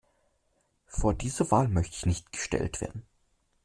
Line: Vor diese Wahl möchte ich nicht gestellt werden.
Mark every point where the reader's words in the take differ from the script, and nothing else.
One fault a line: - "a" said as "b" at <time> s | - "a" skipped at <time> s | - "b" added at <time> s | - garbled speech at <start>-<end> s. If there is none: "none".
none